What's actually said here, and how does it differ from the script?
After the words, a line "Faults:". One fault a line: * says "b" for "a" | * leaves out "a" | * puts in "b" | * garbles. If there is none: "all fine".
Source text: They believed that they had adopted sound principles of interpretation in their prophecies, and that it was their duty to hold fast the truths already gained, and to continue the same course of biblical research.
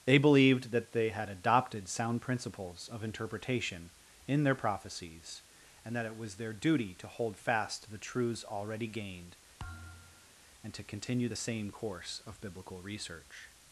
They believed that they had adopted sound principles of interpretation in their prophecies, and that it was their duty to hold fast the truths already gained, and to continue the same course of biblical research.
Faults:
all fine